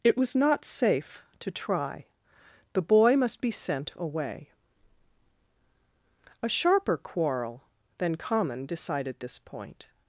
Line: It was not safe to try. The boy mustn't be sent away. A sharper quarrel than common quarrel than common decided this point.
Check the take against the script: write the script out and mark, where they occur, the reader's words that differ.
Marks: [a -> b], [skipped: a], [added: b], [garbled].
It was not safe to try. The boy [mustn't -> must] be sent away. A sharper quarrel than common [skipped: quarrel than common] decided this point.